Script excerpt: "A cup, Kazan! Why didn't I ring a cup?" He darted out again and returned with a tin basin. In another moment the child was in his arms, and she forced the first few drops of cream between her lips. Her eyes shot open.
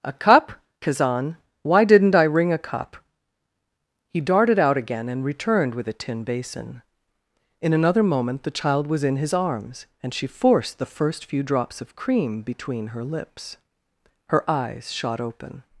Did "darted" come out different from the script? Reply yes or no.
no